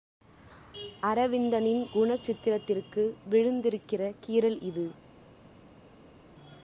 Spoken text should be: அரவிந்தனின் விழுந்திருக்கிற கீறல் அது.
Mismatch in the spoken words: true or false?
true